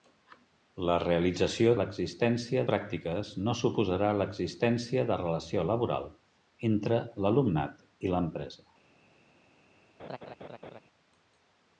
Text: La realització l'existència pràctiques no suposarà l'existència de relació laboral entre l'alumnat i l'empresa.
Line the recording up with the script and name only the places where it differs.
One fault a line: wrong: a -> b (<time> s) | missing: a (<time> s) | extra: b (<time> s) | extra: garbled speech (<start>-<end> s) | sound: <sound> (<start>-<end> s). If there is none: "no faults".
sound: laugh (10.0-10.8 s)